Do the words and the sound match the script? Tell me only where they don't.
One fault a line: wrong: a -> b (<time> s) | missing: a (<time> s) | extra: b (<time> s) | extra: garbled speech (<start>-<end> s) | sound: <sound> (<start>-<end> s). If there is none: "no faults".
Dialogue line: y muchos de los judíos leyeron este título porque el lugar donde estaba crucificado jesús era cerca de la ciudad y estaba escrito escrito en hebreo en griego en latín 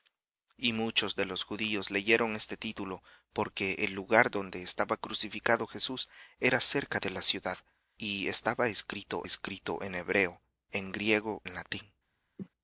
sound: cough (12.4-12.5 s)